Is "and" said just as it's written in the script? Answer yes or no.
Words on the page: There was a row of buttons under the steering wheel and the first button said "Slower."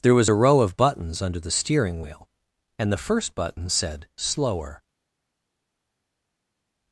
yes